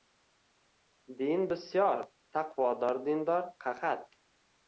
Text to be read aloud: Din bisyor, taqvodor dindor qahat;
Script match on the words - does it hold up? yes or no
yes